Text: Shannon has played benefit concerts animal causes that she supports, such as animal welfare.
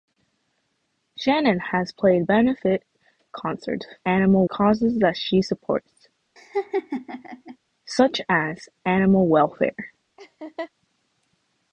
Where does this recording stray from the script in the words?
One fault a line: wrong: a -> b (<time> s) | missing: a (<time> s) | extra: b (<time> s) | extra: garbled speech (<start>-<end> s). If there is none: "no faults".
no faults